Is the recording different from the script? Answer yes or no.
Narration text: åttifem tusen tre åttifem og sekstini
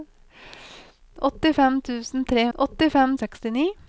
no